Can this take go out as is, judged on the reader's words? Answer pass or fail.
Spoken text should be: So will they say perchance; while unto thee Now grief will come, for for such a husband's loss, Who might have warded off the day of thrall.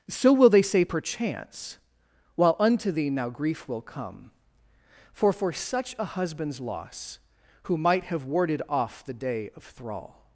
pass